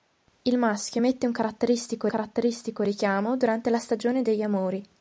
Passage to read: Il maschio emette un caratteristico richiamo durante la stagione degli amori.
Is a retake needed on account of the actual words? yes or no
yes